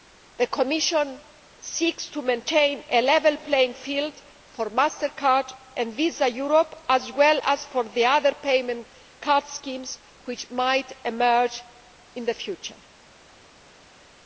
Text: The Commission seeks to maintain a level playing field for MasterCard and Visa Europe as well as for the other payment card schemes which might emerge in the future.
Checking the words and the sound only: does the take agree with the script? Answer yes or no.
yes